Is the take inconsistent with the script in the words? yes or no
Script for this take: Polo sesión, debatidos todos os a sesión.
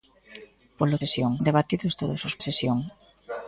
no